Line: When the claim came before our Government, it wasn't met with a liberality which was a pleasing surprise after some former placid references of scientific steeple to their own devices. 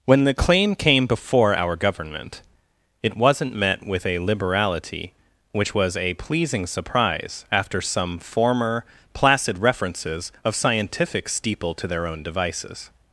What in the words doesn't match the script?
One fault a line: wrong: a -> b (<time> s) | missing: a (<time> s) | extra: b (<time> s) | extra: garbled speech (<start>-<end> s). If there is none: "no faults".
no faults